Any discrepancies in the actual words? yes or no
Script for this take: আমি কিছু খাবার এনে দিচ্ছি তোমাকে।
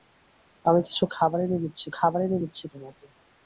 yes